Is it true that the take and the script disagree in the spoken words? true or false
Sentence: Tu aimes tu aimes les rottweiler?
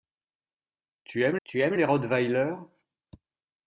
false